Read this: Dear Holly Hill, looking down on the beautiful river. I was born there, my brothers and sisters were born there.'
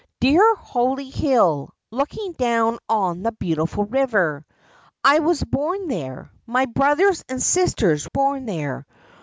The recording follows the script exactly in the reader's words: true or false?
false